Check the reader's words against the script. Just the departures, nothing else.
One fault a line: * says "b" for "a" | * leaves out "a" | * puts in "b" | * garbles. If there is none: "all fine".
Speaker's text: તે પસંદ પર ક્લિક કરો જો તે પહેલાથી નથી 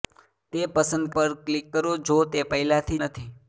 all fine